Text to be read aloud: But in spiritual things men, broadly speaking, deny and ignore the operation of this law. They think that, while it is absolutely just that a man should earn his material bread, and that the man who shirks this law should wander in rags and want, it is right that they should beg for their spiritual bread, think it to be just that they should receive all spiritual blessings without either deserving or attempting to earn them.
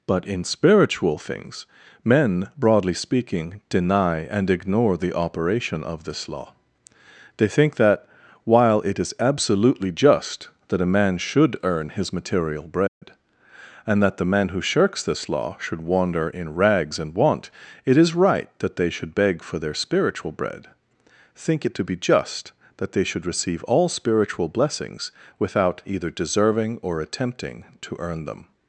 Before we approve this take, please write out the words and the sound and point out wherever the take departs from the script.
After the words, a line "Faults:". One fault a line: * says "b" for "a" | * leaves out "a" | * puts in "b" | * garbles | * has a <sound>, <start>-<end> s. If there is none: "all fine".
But in spiritual things men, broadly speaking, deny and ignore the operation of this law. They think that, while it is absolutely just that a man should earn his material bread, and that the man who shirks this law should wander in rags and want, it is right that they should beg for their spiritual bread, think it to be just that they should receive all spiritual blessings without either deserving or attempting to earn them.
Faults:
* has a dropout, 12.9-13.0 s